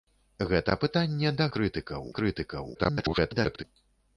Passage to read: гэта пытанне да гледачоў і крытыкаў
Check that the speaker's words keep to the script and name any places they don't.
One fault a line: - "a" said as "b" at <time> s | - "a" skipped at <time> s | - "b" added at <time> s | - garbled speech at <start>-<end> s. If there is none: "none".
- "гледачоў" said as "крытыкаў" at 1.6 s
- garbled speech at 2.7-3.6 s